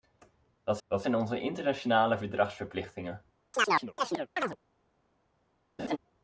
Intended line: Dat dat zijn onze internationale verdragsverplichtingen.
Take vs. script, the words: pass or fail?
pass